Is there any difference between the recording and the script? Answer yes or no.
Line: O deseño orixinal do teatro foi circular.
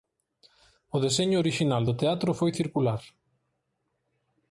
no